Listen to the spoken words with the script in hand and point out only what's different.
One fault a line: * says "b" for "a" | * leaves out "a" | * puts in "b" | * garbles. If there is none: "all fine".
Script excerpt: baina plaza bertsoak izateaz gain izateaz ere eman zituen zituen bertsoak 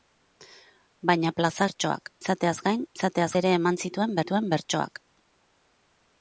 all fine